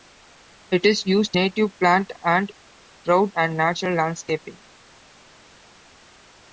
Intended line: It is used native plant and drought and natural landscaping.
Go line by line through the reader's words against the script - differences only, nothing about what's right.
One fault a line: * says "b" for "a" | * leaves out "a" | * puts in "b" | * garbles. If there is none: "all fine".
all fine